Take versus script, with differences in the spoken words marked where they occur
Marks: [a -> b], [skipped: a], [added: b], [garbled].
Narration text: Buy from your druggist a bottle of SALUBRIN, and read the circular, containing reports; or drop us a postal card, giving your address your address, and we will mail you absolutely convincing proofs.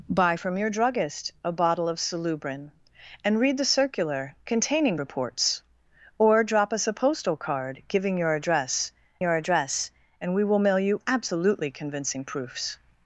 Buy from your druggist a bottle of SALUBRIN, and read the circular, containing reports; or drop us a postal card, giving your address your address, and we will mail you absolutely convincing proofs.